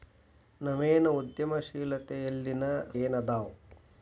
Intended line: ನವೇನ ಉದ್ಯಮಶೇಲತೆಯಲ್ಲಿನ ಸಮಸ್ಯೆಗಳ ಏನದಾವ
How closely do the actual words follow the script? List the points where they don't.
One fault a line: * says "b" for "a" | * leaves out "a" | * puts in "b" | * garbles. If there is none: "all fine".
* leaves out "ಸಮಸ್ಯೆಗಳ"